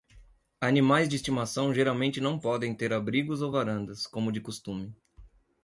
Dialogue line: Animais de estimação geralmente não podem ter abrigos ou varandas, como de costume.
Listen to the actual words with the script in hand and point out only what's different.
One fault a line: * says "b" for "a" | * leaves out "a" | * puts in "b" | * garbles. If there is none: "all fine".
all fine